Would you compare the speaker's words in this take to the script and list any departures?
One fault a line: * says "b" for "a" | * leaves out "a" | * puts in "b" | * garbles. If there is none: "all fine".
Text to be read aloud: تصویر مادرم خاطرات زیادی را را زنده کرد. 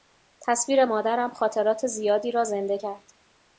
* leaves out "را"